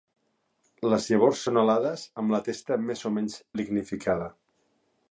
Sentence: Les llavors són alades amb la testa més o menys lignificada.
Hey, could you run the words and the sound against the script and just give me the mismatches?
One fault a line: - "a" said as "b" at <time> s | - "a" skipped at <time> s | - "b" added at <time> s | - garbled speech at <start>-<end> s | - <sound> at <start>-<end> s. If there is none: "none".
none